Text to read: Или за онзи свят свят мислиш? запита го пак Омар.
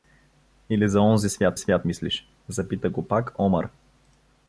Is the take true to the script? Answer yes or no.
yes